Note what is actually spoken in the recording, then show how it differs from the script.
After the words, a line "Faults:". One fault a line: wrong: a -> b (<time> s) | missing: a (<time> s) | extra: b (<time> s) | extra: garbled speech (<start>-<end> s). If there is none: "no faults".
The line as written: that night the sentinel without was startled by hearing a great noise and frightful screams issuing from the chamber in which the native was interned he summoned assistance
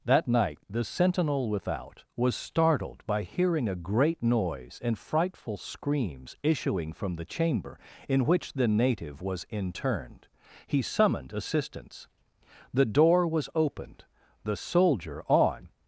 that night the sentinel without was startled by hearing a great noise and frightful screams issuing from the chamber in which the native was interned he summoned assistance the door was opened the soldier on
Faults:
extra: the door was opened the soldier on (12.7 s)